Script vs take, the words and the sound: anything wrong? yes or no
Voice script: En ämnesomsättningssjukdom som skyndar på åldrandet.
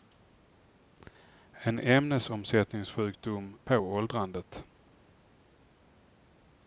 yes